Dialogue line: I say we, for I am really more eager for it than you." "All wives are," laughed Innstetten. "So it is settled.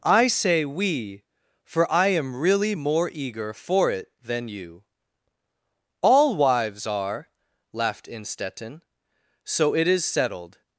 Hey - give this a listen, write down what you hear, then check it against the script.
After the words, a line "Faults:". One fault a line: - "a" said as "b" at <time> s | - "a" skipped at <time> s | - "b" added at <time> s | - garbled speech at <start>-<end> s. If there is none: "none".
I say we, for I am really more eager for it than you." "All wives are," laughed Innstetten. "So it is settled.
Faults:
none